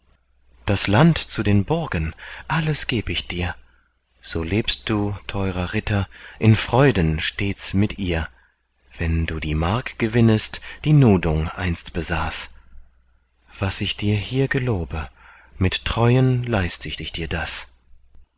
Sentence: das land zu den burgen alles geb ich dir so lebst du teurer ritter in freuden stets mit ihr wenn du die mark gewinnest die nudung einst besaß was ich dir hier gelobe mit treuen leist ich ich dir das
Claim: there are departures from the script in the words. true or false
false